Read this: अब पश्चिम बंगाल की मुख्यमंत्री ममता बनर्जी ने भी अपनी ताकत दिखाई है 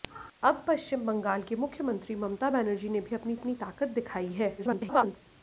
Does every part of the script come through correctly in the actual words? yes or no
no